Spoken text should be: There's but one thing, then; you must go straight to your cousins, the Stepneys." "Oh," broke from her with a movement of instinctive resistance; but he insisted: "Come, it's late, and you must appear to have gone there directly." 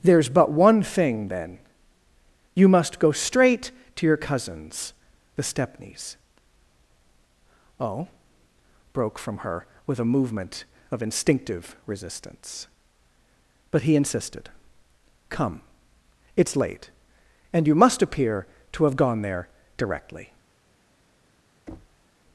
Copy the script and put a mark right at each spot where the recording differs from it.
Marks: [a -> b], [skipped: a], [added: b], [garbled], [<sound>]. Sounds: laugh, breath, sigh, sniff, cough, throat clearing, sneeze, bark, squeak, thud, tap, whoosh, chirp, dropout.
There's but one thing, then; you must go straight to your cousins, the Stepneys." "Oh," broke from her with a movement of instinctive resistance; but he insisted: "Come, it's late, and you must appear to have gone there directly." [thud]